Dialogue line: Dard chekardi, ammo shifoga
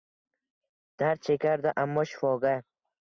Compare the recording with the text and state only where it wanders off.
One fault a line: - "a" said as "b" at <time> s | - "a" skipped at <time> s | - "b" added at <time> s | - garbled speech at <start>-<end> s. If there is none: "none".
none